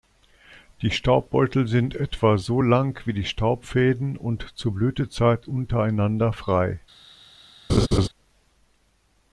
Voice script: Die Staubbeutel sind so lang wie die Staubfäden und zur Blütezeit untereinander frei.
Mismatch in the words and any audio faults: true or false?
true